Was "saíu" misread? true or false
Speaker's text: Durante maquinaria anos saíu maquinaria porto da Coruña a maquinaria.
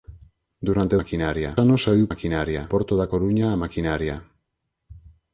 false